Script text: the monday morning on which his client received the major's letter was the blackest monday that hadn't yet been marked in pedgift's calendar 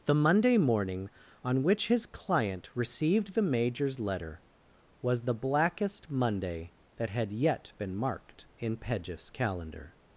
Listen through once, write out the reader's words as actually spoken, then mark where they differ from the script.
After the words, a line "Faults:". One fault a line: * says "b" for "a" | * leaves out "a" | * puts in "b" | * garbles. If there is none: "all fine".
the monday morning on which his client received the major's letter was the blackest monday that had yet been marked in pedgift's calendar
Faults:
* says "had" for "hadn't"